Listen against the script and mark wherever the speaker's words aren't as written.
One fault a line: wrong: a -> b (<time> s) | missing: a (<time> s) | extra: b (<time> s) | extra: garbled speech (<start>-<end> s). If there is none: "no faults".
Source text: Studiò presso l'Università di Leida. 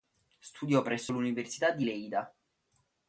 no faults